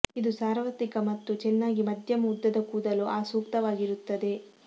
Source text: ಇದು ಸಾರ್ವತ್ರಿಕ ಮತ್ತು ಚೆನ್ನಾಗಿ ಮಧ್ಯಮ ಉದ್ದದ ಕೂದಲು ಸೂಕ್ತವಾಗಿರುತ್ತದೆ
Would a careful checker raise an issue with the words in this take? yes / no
yes